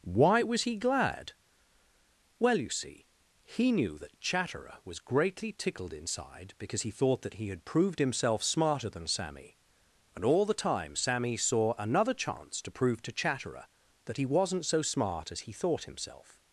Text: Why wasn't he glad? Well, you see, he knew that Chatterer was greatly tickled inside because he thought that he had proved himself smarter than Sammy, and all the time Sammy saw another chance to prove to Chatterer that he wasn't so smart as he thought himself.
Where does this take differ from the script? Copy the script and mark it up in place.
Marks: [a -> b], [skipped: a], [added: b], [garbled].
Why [wasn't -> was] he glad? Well, you see, he knew that Chatterer was greatly tickled inside because he thought that he had proved himself smarter than Sammy, and all the time Sammy saw another chance to prove to Chatterer that he wasn't so smart as he thought himself.